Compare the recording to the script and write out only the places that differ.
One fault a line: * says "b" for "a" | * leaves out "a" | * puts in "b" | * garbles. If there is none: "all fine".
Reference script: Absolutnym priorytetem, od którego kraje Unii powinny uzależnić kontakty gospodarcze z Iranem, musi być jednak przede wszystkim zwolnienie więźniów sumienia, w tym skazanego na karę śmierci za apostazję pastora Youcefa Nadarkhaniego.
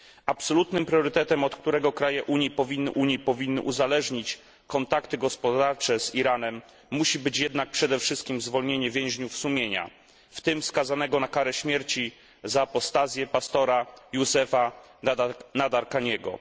* puts in "Unii powinny"